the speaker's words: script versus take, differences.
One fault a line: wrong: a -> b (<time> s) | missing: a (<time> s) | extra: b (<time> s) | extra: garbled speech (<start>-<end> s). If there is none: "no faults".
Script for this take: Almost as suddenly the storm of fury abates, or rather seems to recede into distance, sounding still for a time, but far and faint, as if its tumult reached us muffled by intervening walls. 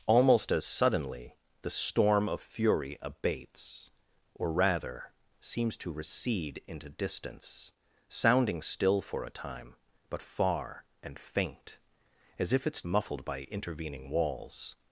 missing: tumult reached us (12.8 s)